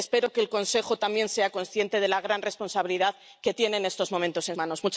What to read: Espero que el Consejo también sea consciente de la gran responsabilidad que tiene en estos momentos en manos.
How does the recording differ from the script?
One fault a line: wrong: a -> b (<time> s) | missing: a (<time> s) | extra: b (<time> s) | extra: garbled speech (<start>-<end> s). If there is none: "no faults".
no faults